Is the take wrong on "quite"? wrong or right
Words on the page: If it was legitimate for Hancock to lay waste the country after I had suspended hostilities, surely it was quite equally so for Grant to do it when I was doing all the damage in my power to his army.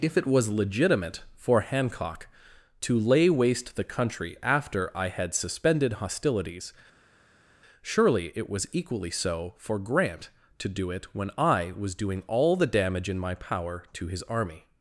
wrong